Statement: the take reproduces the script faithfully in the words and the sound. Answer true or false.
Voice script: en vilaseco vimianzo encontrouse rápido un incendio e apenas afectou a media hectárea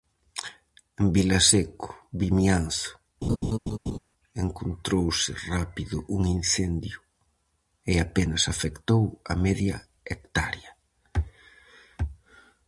false